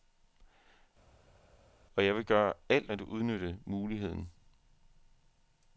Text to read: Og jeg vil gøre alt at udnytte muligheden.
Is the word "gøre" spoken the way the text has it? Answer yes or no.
yes